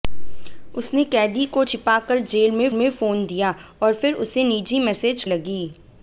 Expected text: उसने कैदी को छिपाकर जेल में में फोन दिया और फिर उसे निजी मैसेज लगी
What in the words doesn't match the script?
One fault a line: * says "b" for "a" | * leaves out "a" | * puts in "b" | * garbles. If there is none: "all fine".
all fine